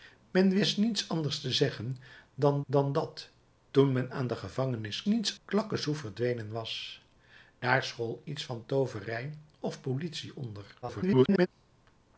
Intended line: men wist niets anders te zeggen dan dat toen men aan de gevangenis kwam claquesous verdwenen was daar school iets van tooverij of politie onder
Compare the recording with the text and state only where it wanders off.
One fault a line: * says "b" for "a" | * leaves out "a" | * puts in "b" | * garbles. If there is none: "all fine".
* puts in "dan"
* says "niets" for "kwam"
* garbles